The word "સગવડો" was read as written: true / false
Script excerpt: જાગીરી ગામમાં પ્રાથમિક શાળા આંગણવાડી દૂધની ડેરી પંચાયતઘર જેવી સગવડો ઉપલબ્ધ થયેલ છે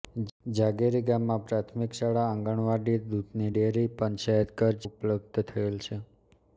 false